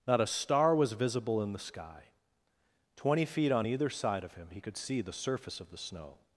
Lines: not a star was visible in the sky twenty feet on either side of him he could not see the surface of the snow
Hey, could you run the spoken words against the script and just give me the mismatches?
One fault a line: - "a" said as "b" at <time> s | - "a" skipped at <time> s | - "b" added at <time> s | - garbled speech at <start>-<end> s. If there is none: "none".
- "not" skipped at 4.8 s